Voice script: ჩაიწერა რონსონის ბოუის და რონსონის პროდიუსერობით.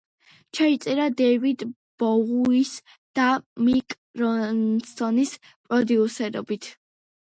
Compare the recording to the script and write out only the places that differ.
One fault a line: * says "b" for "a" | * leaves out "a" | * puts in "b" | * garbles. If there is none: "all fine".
* says "დეივიდ" for "რონსონის"
* puts in "მიკ"